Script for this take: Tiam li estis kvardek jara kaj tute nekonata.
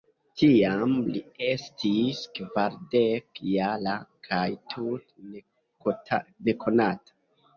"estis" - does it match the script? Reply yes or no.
yes